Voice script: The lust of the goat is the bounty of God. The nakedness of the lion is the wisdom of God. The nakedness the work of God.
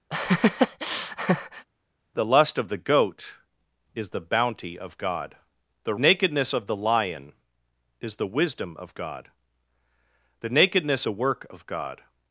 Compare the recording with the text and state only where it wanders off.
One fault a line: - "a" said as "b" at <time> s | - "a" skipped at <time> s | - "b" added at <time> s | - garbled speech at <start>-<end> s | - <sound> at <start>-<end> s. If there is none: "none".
- laugh at 0.1-1.7 s